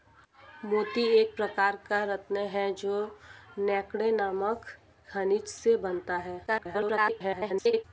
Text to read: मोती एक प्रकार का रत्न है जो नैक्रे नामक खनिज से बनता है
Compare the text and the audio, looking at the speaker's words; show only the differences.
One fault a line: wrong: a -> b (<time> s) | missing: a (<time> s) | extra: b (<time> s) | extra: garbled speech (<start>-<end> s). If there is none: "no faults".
extra: garbled speech (6.5-7.8 s)